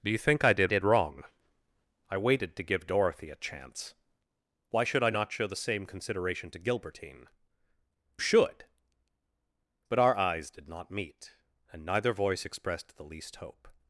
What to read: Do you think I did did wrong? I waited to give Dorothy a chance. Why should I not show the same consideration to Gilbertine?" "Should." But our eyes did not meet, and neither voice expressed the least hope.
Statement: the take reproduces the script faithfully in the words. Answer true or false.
true